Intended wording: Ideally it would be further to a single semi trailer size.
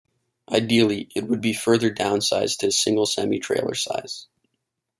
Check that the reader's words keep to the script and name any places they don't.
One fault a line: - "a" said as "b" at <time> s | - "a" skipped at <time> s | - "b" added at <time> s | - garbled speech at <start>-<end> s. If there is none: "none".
- "downsized" added at 1.9 s